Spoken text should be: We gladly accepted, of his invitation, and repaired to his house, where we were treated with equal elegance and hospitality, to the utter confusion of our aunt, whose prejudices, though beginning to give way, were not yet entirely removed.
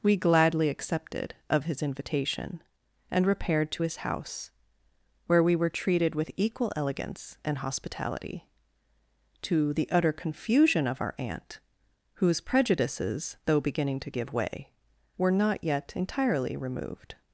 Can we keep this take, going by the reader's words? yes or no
yes